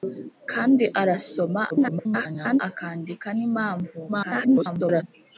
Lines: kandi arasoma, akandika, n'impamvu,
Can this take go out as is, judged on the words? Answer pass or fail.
fail